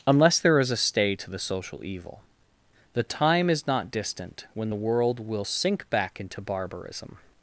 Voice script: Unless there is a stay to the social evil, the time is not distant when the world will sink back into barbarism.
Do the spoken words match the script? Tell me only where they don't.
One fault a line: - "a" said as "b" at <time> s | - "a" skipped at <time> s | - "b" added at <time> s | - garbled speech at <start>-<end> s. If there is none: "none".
none